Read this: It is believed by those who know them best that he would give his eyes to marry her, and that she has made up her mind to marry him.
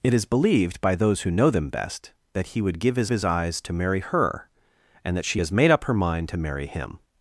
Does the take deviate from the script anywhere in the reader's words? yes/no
yes